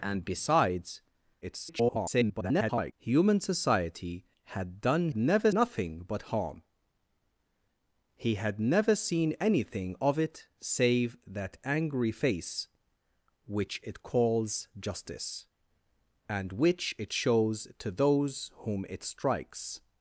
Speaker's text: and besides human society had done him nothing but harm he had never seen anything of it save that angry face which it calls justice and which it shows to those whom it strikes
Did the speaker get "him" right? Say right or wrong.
wrong